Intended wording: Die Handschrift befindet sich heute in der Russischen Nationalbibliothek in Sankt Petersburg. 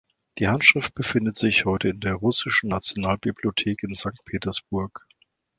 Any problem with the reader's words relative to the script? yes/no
no